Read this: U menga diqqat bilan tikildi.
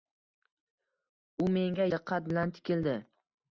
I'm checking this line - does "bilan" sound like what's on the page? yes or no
yes